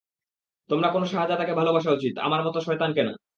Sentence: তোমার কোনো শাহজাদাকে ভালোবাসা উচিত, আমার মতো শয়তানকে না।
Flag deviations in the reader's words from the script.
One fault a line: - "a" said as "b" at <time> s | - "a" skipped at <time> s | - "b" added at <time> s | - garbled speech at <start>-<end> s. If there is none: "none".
none